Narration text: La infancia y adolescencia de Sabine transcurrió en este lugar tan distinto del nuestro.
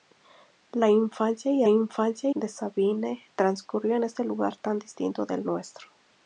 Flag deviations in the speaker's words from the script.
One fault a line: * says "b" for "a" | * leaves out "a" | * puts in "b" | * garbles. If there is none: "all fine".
* says "infancia" for "adolescencia"